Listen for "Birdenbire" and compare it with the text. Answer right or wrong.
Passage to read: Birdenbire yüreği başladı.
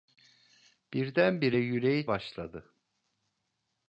right